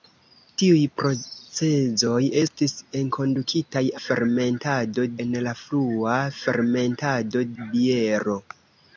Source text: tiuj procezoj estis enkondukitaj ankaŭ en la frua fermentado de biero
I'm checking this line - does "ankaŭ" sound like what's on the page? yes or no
no